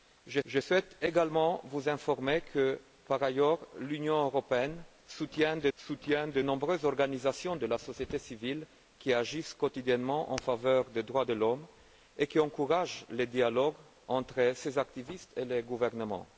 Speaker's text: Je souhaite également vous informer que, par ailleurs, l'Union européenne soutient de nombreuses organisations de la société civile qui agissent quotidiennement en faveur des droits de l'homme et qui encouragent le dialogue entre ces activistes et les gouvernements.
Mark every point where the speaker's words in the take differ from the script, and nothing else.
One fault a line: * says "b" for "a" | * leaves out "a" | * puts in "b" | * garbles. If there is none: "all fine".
* puts in "je"
* puts in "soutient de"